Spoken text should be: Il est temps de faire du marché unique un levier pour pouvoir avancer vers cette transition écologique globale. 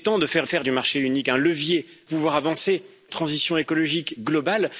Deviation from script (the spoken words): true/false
true